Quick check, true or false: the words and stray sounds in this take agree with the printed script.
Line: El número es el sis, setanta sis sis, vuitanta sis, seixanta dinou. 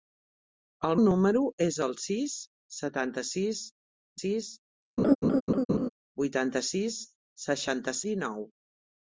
false